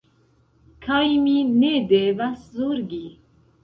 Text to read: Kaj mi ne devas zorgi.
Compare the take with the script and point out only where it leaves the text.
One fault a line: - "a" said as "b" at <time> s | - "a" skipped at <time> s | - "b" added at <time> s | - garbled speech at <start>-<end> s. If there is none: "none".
none